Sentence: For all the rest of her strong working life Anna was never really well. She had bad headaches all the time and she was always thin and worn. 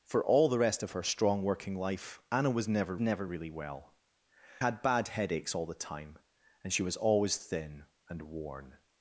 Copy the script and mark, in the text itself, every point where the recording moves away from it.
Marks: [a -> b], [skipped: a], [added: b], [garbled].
For all the rest of her strong working life Anna was never [added: never] really well. [skipped: She] had bad headaches all the time and she was always thin and worn.